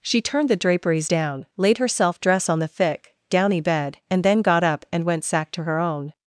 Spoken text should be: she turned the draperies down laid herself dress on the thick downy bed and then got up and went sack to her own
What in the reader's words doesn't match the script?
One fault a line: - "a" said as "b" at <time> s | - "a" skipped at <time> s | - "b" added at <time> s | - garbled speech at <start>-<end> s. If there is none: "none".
none